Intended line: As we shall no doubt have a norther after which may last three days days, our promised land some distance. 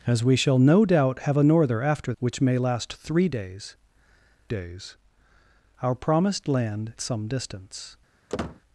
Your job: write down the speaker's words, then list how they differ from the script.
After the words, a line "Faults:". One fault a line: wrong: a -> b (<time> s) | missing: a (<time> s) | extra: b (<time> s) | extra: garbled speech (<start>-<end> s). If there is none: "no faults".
As we shall no doubt have a norther after which may last three days days, our promised land some distance.
Faults:
no faults